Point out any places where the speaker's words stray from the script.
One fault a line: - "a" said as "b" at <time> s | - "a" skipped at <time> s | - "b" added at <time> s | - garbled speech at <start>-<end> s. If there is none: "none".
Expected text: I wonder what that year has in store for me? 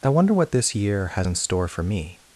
- "that" said as "this" at 0.5 s